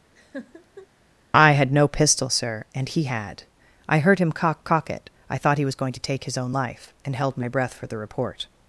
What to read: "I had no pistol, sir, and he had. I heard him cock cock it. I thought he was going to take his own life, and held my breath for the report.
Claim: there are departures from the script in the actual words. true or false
false